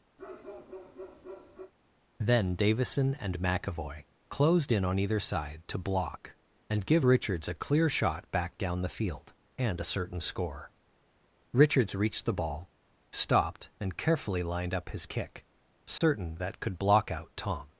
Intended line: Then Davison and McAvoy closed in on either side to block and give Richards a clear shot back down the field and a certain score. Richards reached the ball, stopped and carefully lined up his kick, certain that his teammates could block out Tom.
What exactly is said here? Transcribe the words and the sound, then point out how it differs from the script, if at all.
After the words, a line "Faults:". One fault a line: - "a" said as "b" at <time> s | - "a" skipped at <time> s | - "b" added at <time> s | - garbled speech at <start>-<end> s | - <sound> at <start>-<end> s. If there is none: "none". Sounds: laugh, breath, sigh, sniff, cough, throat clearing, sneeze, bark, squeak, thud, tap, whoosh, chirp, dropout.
Then Davison and McAvoy closed in on either side to block and give Richards a clear shot back down the field and a certain score. Richards reached the ball, stopped and carefully lined up his kick, certain that could block out Tom.
Faults:
- bark at 0.2-1.7 s
- dropout at 16.0-16.0 s
- "his teammates" skipped at 16.6 s